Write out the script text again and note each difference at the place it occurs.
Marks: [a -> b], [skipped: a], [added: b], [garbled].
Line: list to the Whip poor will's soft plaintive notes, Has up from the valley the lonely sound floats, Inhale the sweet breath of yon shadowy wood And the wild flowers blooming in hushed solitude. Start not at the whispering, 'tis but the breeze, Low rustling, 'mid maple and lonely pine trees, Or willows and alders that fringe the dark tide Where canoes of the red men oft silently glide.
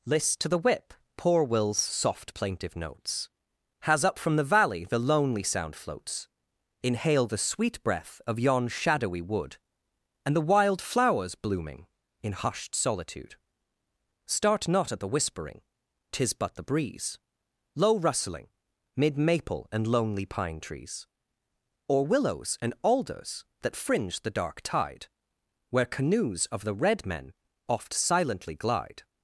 list to the Whip poor will's soft plaintive notes, Has up from the valley the lonely sound floats, Inhale the sweet breath of yon shadowy wood And the wild flowers blooming in hushed solitude. Start not at the whispering, 'tis but the breeze, Low rustling, 'mid maple and lonely pine trees, Or willows and alders that fringe the dark tide Where canoes of the red men oft silently glide.